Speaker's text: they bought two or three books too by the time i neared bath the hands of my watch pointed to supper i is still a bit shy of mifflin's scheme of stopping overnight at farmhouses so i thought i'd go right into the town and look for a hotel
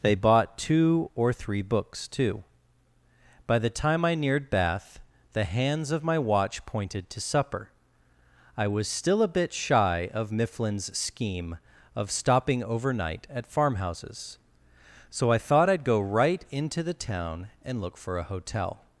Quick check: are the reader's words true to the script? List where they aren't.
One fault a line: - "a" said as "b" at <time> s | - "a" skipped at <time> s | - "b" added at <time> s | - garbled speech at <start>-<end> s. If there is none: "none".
- "is" said as "was" at 8.7 s